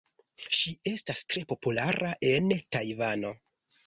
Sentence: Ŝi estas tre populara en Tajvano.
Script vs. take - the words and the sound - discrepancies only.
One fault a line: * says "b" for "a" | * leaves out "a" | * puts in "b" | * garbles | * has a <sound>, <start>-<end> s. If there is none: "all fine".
all fine